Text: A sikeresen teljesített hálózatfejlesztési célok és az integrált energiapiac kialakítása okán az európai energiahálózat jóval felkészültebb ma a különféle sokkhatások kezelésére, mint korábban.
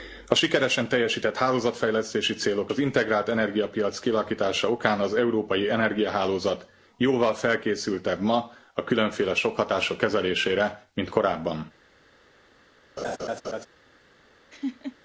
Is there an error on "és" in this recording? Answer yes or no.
yes